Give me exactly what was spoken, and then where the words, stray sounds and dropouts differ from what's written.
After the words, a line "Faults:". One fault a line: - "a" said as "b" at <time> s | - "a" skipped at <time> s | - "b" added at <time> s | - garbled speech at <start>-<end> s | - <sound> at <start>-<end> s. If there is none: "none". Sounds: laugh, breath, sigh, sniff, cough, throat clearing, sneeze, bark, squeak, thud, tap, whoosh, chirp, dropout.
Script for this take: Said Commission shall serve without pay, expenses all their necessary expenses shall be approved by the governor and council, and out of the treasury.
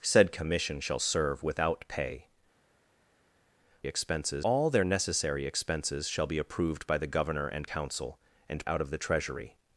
Said Commission shall serve without pay, expenses all their necessary expenses shall be approved by the governor and council, and out of the treasury.
Faults:
none